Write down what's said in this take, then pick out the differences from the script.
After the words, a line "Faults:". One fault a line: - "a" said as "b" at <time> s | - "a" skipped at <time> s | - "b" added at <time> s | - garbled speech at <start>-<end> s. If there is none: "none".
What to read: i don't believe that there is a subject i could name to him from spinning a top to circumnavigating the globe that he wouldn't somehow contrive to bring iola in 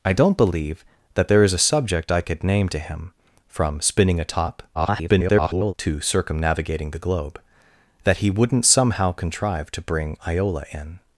i don't believe that there is a subject i could name to him from spinning a top [garbled] to circumnavigating the globe that he wouldn't somehow contrive to bring iola in
Faults:
- garbled speech at 4.7-5.7 s